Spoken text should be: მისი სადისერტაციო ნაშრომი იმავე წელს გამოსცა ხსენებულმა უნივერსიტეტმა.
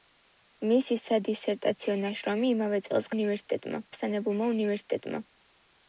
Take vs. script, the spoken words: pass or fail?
fail